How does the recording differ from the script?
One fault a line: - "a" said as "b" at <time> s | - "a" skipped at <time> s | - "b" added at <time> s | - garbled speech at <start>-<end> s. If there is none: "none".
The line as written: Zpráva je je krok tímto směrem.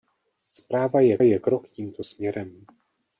none